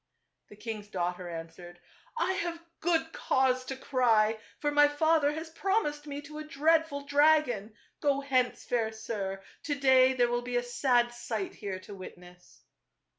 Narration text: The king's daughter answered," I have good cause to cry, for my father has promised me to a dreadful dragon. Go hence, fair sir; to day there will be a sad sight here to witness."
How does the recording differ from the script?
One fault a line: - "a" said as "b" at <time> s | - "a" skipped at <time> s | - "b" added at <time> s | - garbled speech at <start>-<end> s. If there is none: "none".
none